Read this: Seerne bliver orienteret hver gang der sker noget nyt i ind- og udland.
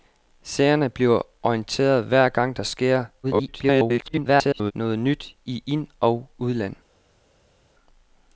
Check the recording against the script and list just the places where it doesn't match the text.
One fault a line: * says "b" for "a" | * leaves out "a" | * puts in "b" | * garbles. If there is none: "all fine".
* garbles